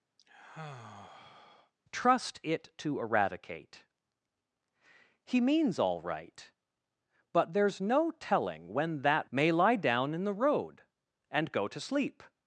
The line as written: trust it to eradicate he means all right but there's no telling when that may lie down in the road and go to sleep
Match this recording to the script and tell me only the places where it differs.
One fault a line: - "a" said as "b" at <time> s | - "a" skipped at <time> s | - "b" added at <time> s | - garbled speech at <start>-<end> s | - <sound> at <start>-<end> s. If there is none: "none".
- sigh at 0.2-1.7 s